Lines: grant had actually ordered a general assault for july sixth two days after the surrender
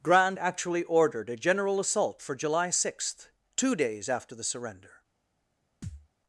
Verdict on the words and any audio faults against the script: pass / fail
fail